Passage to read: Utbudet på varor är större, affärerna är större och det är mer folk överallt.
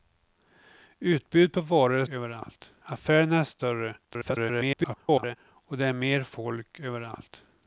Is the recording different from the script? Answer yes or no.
yes